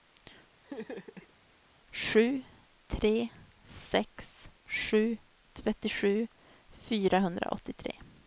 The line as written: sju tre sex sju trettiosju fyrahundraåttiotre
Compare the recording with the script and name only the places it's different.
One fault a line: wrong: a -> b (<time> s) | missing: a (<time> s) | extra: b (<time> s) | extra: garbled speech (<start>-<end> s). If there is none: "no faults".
no faults